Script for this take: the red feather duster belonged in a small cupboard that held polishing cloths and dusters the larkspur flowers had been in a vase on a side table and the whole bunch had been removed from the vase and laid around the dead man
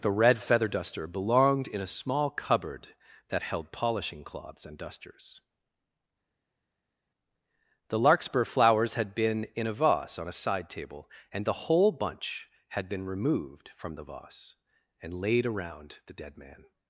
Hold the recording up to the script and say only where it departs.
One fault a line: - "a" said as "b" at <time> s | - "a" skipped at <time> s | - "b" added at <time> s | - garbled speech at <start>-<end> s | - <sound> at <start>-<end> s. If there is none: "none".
none